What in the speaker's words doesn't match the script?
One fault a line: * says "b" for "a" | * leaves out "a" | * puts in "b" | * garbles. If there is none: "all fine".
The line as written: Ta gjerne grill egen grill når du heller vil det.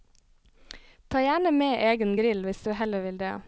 * says "med" for "grill"
* says "hvis" for "når"